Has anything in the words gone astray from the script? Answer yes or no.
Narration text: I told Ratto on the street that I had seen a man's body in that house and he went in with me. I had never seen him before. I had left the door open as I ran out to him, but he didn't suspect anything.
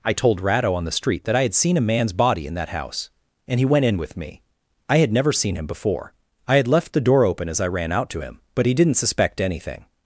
no